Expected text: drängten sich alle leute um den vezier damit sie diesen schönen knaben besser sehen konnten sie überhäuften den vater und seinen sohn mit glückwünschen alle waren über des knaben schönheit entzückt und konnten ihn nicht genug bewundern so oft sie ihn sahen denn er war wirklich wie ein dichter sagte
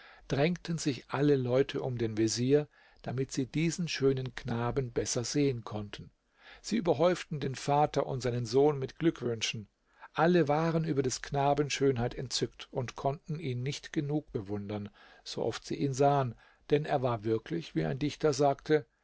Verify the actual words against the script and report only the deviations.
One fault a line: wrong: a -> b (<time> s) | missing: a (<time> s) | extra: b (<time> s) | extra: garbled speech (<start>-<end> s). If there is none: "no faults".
no faults